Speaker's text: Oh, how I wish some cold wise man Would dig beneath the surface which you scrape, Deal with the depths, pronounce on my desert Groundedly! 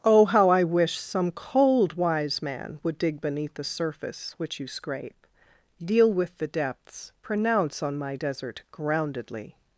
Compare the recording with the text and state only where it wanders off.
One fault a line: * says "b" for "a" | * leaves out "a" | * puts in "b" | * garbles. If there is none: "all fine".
all fine